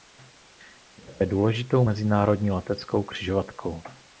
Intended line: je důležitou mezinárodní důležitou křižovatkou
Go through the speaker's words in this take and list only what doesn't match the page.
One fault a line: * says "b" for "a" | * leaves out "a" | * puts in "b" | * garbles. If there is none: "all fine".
* puts in "také"
* says "leteckou" for "důležitou"